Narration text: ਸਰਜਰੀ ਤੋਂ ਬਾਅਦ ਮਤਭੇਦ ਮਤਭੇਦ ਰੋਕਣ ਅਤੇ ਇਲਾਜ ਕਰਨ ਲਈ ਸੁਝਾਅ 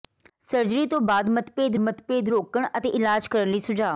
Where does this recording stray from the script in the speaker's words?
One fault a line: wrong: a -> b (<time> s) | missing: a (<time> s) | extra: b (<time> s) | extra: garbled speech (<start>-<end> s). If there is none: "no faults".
no faults